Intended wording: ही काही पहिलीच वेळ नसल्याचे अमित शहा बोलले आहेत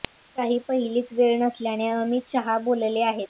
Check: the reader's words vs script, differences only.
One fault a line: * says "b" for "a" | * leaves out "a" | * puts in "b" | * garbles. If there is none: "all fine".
all fine